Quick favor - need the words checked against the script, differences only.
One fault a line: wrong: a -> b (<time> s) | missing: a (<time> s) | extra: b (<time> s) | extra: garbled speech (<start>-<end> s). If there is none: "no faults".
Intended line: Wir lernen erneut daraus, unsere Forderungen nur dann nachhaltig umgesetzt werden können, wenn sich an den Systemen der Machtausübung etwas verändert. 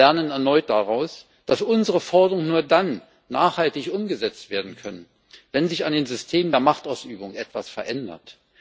extra: dass (1.5 s)